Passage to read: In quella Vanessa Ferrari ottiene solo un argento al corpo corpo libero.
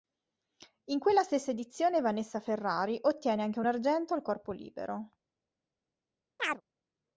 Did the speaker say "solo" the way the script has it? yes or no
no